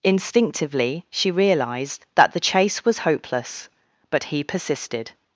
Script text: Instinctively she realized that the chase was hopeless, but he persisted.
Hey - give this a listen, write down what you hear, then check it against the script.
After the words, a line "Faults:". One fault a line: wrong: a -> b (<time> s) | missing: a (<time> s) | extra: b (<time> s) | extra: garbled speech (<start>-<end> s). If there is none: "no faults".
Instinctively she realized that the chase was hopeless, but he persisted.
Faults:
no faults